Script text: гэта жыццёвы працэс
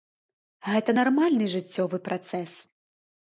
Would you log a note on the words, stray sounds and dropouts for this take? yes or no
yes